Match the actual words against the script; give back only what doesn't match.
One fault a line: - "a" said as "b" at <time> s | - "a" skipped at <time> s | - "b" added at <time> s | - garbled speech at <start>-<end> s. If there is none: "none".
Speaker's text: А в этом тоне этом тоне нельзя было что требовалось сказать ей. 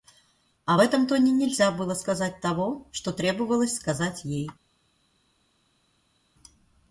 - "этом тоне нельзя было" said as "нельзя было сказать того" at 1.3 s